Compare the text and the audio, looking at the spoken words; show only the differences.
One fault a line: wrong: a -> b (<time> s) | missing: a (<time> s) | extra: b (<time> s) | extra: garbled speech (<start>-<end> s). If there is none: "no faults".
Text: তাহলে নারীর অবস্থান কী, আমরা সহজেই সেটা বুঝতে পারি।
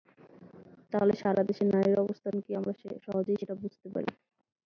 extra: সারা দেশে (1.2 s)